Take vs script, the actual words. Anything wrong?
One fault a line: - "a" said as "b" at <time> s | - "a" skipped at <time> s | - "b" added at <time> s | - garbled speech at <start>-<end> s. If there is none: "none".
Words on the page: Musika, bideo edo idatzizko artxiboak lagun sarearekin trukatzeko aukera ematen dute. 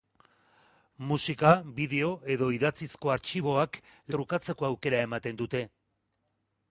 - "lagun sarearekin" skipped at 3.8 s